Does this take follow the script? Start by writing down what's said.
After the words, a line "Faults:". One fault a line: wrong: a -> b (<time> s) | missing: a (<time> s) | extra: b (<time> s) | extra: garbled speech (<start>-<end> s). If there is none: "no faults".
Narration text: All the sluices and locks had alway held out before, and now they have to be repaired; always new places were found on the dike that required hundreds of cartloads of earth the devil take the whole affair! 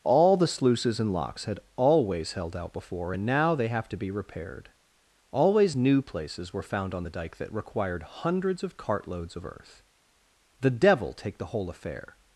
All the sluices and locks had always held out before, and now they have to be repaired; always new places were found on the dike that required hundreds of cartloads of earth the devil take the whole affair!
Faults:
wrong: alway -> always (1.8 s)